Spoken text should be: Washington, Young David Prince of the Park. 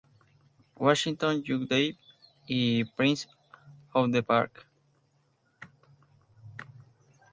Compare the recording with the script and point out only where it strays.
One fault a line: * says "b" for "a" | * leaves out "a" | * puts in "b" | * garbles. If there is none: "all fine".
* puts in "y"